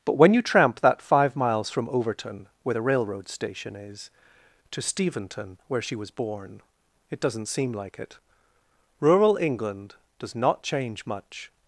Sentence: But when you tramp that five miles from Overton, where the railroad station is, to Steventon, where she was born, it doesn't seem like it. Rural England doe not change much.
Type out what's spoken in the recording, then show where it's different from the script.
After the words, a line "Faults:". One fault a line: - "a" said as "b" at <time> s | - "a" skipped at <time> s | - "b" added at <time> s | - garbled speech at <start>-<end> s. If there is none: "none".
But when you tramp that five miles from Overton, where the railroad station is, to Steventon, where she was born, it doesn't seem like it. Rural England does not change much.
Faults:
- "doe" said as "does" at 10.2 s